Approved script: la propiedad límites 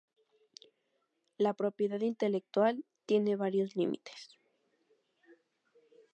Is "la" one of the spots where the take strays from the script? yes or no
no